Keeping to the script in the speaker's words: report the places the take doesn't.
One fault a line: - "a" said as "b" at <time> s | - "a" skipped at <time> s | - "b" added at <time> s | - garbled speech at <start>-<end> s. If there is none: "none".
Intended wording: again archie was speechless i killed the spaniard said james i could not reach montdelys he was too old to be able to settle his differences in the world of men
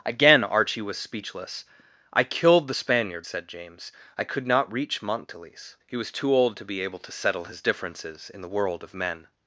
none